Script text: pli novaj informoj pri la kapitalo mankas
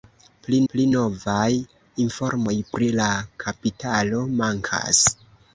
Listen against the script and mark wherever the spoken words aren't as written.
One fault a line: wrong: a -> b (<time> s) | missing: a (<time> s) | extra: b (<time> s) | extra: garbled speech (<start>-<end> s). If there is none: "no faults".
extra: pli (0.7 s)